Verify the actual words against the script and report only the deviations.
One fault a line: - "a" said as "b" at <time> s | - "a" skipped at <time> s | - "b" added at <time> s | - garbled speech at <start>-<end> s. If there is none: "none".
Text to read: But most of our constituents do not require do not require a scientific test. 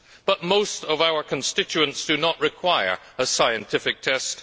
- "do not require" skipped at 3.0 s